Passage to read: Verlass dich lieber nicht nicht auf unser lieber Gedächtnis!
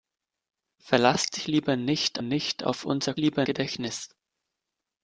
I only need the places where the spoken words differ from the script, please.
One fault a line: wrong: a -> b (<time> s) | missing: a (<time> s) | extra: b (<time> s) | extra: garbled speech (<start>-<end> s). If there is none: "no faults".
no faults